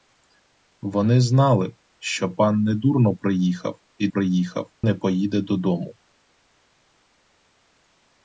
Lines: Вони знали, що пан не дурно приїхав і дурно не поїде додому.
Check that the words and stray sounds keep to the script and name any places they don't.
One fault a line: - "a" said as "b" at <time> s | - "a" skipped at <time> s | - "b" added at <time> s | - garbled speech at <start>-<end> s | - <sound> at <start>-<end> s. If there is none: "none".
- "дурно" said as "приїхав" at 4.1 s